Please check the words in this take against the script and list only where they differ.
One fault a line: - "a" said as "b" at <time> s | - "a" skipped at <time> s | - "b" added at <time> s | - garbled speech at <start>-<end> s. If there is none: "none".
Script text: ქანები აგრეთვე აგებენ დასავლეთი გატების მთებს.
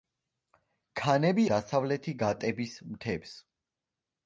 - "აგრეთვე აგებენ" skipped at 1.4 s